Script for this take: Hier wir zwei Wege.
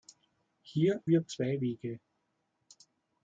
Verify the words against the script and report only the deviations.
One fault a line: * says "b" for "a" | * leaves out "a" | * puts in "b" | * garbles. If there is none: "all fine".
all fine